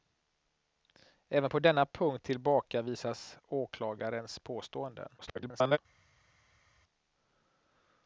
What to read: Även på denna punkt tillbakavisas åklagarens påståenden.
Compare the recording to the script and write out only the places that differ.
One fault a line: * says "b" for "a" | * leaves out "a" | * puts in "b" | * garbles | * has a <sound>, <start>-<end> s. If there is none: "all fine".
* garbles